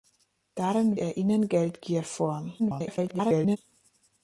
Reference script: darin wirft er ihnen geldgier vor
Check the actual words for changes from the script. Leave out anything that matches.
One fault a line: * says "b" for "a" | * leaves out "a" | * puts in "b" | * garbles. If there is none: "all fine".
* leaves out "wirft"
* garbles